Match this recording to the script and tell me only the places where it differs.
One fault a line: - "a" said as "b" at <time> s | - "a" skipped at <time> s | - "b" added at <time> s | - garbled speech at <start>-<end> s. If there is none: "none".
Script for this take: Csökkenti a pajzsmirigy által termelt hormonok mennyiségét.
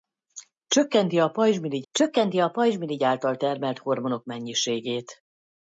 - "csökkenti a pajzsmirigy" added at 1.9 s